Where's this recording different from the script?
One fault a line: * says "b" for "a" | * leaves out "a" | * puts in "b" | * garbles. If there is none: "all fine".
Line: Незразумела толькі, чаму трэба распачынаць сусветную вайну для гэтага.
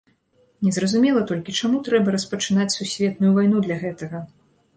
all fine